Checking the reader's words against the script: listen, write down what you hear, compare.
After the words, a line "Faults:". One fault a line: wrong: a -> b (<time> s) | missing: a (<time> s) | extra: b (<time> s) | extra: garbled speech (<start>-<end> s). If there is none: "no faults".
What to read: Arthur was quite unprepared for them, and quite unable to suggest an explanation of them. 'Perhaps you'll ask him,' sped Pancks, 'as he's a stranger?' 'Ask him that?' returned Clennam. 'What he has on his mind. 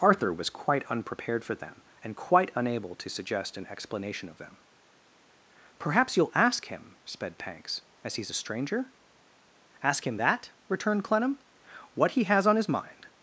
Arthur was quite unprepared for them, and quite unable to suggest an explanation of them. 'Perhaps you'll ask him,' sped Pancks, 'as he's a stranger?' 'Ask him that?' returned Clennam. 'What he has on his mind.
Faults:
no faults